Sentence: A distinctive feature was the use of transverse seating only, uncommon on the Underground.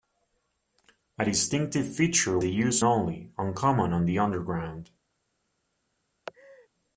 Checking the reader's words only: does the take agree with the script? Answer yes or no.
no